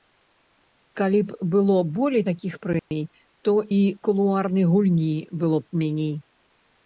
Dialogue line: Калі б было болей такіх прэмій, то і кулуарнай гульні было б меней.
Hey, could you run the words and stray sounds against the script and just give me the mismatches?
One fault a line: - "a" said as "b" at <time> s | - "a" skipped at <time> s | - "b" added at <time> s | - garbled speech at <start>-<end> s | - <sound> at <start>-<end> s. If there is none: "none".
- dropout at 2.8-2.9 s